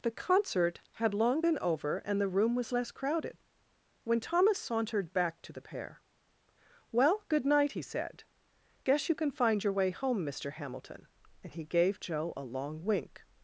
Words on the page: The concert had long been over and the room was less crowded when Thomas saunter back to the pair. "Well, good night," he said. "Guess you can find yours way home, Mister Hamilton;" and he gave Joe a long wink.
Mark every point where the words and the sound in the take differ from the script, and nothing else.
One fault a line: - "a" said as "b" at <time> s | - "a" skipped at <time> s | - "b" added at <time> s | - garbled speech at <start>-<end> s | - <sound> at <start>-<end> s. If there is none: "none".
- "saunter" said as "sauntered" at 4.6 s
- "yours" said as "your" at 9.6 s